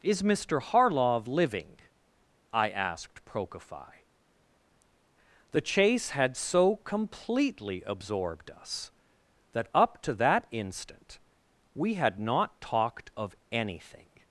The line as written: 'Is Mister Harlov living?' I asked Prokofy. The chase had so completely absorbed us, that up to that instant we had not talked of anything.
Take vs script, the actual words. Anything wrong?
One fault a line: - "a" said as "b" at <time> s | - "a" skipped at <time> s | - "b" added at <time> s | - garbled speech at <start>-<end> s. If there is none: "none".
none